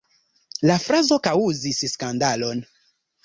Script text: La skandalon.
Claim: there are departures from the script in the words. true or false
true